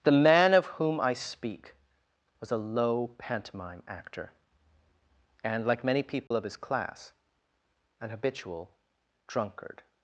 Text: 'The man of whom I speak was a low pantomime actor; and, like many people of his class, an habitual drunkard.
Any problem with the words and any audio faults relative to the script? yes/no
yes